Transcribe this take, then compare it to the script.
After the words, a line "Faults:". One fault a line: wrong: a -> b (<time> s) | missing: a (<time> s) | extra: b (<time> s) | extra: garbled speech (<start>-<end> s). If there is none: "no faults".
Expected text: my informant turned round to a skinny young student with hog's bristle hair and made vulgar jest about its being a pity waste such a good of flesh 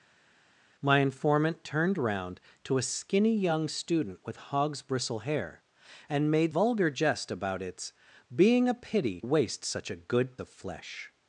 my informant turned round to a skinny young student with hog's bristle hair and made vulgar jest about its being a pity waste such a good of flesh
Faults:
no faults